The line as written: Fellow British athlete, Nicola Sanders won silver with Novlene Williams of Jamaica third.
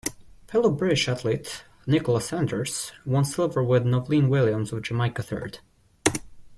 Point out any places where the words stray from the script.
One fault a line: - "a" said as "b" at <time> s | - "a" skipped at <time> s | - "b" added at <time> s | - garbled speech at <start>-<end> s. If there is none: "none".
none